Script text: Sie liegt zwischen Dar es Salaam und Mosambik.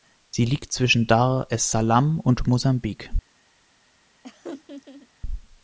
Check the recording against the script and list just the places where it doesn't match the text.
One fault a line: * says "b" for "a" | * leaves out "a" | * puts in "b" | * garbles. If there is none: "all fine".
all fine